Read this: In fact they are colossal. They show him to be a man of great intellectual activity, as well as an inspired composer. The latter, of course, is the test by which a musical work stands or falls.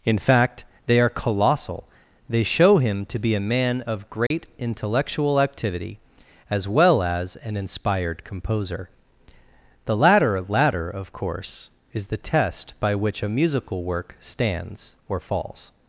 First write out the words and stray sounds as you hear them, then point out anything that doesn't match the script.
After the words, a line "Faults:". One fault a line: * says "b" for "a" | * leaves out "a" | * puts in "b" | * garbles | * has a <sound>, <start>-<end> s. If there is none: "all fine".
In fact they are colossal. They show him to be a man of great intellectual activity, as well as an inspired composer. The latter latter, of course, is the test by which a musical work stands or falls.
Faults:
* has a dropout, 4.3-4.3 s
* puts in "latter"